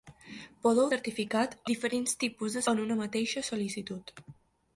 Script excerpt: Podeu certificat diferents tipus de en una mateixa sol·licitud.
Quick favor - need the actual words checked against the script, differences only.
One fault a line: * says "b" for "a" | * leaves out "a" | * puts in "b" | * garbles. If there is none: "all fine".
all fine